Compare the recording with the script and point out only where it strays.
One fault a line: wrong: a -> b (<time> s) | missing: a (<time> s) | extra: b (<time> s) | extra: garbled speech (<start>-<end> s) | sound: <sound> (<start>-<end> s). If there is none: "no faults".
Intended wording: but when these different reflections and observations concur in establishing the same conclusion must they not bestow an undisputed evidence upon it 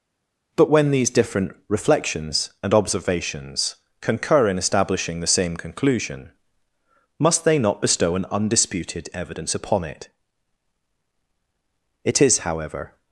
extra: it is however (12.0 s)